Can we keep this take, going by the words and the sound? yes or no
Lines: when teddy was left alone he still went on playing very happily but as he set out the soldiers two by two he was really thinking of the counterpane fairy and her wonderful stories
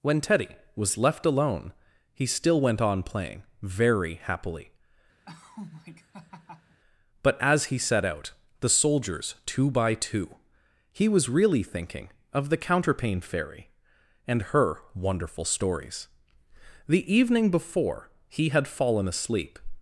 no